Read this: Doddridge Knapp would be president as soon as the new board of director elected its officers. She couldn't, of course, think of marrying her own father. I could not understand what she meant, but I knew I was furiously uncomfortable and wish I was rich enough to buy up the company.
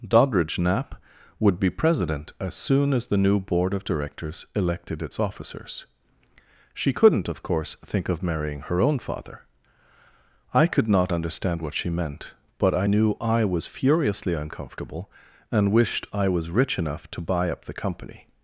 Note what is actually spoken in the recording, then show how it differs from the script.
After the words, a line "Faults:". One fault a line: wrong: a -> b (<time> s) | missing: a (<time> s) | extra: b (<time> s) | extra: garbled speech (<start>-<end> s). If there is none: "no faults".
Doddridge Knapp would be president as soon as the new board of directors elected its officers. She couldn't, of course, think of marrying her own father. I could not understand what she meant, but I knew I was furiously uncomfortable and wished I was rich enough to buy up the company.
Faults:
wrong: director -> directors (3.8 s)
wrong: wish -> wished (15.7 s)